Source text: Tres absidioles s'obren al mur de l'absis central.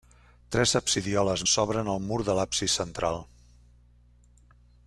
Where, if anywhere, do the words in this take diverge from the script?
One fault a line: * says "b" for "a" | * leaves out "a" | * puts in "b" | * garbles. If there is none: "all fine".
all fine